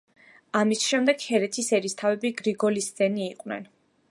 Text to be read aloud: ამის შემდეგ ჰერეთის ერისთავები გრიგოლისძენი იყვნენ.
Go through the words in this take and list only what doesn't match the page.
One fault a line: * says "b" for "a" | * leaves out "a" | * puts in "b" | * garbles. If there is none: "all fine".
all fine